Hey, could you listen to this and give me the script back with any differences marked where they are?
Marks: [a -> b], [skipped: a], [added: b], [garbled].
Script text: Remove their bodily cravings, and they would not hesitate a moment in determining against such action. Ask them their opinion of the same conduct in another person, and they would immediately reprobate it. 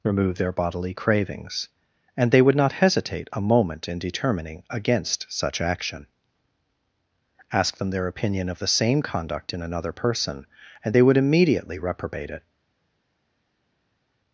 Remove their bodily cravings, and they would not hesitate a moment in determining against such action. Ask them their opinion of the same conduct in another person, and they would immediately reprobate it.